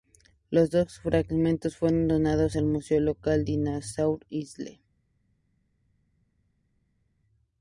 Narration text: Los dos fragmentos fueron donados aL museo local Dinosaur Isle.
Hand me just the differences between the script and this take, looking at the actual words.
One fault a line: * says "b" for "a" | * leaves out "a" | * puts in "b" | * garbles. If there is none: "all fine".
all fine